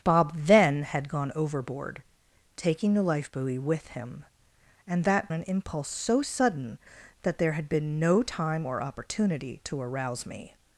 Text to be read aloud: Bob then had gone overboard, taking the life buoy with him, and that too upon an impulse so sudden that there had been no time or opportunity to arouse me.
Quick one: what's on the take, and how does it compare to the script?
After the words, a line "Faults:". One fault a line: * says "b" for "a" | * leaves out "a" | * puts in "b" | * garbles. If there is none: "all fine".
Bob then had gone overboard, taking the life buoy with him, and that an impulse so sudden that there had been no time or opportunity to arouse me.
Faults:
* leaves out "too upon"